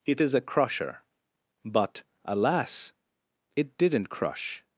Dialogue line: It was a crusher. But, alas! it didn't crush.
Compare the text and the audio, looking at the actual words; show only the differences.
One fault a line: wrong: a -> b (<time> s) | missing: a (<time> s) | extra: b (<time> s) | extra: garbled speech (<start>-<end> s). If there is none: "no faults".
wrong: was -> is (0.2 s)